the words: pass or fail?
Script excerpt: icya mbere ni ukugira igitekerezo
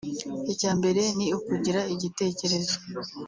pass